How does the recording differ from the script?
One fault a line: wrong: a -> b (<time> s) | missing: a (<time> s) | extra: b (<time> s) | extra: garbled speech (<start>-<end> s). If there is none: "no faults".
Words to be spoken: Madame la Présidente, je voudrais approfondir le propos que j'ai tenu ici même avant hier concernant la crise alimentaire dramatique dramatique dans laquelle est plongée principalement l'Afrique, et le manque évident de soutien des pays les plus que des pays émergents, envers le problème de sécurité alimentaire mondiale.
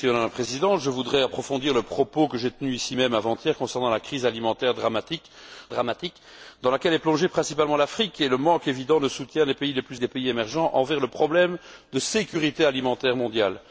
no faults